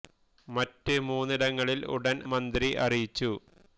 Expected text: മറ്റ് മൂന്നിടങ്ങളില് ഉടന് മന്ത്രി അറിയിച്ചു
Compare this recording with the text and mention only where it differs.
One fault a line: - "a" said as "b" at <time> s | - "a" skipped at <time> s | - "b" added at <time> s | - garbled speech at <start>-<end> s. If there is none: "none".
none